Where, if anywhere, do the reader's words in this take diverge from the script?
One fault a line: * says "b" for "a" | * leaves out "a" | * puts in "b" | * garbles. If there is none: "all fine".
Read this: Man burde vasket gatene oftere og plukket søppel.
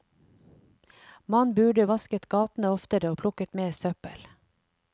* puts in "mer"